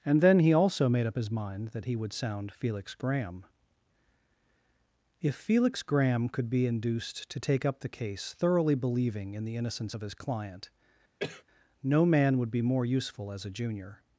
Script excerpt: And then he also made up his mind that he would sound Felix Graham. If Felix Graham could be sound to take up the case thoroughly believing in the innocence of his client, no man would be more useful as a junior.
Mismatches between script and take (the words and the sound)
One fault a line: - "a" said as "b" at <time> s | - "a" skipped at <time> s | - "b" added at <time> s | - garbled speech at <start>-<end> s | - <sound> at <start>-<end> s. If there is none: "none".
- "sound" said as "induced" at 6.7 s
- cough at 11.2-11.4 s